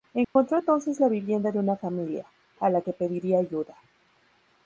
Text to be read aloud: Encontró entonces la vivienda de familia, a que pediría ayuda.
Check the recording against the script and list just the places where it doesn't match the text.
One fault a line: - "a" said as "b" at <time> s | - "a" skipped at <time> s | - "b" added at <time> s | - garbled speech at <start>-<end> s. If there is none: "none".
- "una" added at 1.6 s
- "la" added at 2.7 s